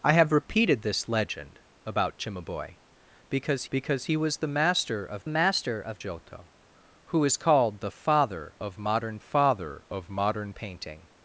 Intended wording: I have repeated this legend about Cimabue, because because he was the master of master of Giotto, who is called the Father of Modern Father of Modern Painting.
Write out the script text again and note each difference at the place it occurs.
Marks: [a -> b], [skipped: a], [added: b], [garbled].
I have repeated this legend about Cimabue, because because he was the master of master of Giotto, who is called the Father of Modern Father of Modern Painting.